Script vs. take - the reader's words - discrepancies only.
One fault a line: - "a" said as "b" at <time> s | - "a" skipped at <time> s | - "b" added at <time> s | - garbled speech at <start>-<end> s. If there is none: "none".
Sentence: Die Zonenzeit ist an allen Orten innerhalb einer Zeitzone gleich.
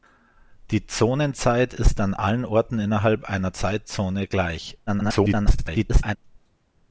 - garbled speech at 4.9-6.2 s